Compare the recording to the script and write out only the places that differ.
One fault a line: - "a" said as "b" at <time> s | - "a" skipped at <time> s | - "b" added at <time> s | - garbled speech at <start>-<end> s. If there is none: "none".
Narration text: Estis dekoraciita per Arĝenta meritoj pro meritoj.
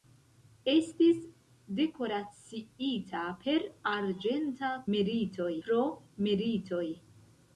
none